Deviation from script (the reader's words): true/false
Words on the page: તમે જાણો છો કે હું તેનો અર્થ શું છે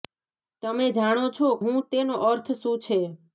true